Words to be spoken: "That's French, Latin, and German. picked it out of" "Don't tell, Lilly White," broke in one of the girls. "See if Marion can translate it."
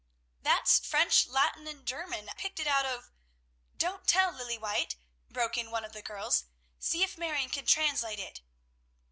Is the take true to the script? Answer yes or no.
yes